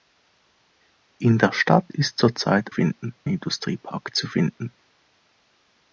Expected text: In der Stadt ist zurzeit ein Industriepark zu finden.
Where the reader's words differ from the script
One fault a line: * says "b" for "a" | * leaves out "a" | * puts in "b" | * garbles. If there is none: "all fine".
* says "finden" for "ein"